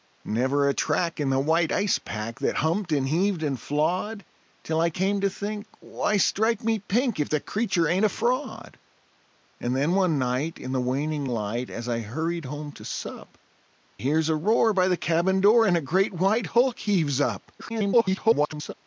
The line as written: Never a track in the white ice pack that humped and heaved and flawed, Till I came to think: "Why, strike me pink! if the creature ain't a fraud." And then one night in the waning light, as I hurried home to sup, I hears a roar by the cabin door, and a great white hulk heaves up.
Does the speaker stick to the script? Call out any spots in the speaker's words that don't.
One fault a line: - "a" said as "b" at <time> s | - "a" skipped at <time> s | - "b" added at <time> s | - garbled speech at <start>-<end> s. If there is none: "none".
- "I" skipped at 13.4 s
- garbled speech at 17.6-18.7 s